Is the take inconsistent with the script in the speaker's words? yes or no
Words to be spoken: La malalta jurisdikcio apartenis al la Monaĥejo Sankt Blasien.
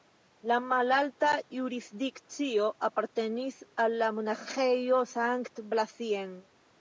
no